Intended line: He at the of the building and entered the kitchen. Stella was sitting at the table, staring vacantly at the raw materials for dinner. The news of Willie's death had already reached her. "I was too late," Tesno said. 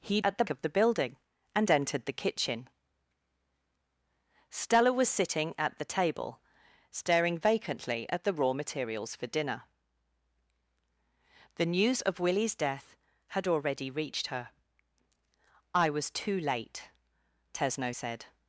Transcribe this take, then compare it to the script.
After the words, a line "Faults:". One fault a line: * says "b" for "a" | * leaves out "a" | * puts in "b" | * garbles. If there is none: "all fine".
He at the of the building and entered the kitchen. Stella was sitting at the table, staring vacantly at the raw materials for dinner. The news of Willie's death had already reached her. "I was too late," Tesno said.
Faults:
all fine